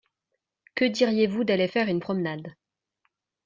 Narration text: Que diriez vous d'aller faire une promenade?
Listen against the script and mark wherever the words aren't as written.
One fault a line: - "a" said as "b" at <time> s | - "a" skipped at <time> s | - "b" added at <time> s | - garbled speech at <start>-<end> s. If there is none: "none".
none